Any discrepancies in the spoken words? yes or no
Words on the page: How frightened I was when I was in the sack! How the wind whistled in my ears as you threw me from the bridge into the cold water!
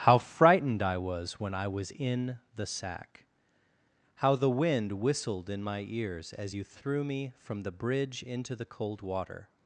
no